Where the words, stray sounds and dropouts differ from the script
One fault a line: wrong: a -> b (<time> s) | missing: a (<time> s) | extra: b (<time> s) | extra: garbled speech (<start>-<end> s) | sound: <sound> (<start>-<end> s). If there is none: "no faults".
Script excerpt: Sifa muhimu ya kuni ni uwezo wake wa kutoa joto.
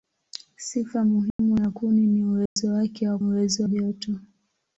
sound: dropout (1.3-1.4 s)
sound: dropout (2.5-2.6 s)
wrong: kutoa -> uwezo (3.2 s)